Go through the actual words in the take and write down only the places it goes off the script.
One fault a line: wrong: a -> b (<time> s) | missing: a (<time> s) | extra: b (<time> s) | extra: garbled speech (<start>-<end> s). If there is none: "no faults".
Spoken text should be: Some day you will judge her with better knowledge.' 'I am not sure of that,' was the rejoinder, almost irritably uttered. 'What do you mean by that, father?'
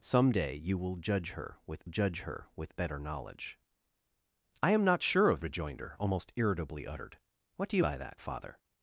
extra: judge her with (1.8 s)
missing: that was the (5.4 s)
missing: mean (7.8 s)